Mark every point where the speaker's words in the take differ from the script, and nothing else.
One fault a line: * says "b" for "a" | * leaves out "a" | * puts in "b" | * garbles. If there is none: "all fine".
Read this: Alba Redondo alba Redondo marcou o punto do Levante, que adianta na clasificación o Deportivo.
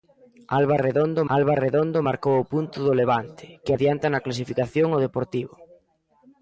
all fine